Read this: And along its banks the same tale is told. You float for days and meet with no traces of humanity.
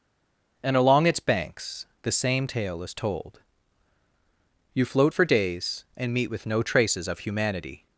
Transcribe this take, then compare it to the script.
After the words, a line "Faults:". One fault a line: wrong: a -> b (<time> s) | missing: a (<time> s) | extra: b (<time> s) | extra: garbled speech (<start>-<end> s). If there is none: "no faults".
And along its banks the same tale is told. You float for days and meet with no traces of humanity.
Faults:
no faults